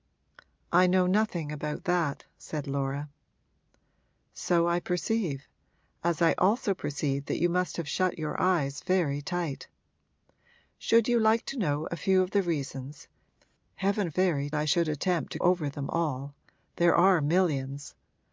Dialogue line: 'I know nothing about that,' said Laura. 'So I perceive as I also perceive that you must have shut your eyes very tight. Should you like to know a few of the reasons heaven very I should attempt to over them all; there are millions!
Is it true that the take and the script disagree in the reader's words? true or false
false